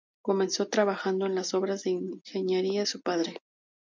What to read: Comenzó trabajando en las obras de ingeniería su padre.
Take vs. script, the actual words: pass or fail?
pass